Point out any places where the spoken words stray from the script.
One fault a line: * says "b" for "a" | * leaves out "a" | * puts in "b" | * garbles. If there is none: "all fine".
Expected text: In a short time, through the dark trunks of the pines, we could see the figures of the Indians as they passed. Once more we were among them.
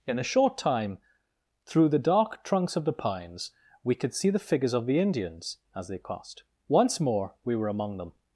* says "crossed" for "passed"